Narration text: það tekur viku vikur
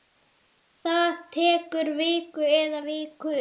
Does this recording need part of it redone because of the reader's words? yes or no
yes